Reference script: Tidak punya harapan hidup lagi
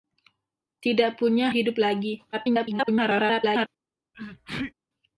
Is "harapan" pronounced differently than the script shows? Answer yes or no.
yes